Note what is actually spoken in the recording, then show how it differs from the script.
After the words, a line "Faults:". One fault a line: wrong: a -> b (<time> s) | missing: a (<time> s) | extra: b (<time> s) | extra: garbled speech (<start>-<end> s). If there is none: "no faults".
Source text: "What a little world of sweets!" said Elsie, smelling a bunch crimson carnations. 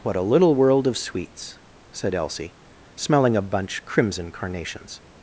"What a little world of sweets!" said Elsie, smelling a bunch crimson carnations.
Faults:
no faults